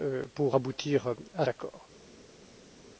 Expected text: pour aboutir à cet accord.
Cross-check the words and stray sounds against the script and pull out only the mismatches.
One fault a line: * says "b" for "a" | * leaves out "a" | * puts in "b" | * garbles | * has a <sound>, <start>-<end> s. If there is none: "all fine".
* leaves out "cet"